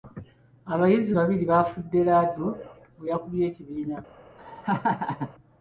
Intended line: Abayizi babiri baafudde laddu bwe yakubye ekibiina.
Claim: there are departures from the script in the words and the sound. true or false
true